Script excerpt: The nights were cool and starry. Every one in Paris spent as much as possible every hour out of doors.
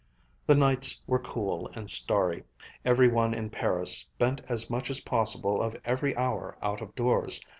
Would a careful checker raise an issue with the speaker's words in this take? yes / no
yes